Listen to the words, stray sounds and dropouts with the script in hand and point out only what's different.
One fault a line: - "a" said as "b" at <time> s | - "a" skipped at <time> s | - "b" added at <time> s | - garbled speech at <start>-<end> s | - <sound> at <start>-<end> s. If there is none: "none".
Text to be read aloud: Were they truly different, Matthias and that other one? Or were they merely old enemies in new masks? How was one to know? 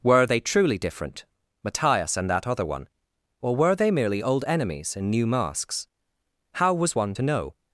none